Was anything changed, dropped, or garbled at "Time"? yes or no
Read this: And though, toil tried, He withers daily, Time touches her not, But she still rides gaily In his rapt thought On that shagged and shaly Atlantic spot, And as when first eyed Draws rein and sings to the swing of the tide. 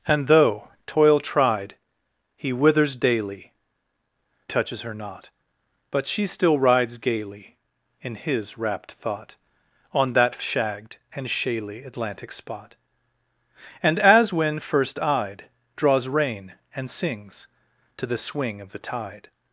yes